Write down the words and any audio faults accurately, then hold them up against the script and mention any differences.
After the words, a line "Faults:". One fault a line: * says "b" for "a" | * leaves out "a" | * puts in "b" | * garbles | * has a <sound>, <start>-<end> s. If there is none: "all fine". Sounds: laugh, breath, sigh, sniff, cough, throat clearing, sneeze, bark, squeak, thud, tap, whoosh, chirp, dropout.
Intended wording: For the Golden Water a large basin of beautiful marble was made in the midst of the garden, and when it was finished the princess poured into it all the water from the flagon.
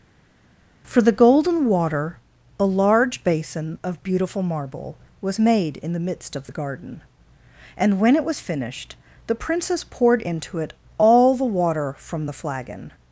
For the Golden Water a large basin of beautiful marble was made in the midst of the garden, and when it was finished the princess poured into it all the water from the flagon.
Faults:
all fine